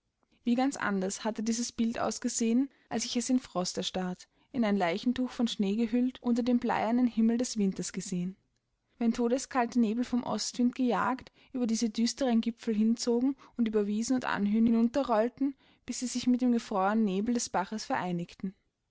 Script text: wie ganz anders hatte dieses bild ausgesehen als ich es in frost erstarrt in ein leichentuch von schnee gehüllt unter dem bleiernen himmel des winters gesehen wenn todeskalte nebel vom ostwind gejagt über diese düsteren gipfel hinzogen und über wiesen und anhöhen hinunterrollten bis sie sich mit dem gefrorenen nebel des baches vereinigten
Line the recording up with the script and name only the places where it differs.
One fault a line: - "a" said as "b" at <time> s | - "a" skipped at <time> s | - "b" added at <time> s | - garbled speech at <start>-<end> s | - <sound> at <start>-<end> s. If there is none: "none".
none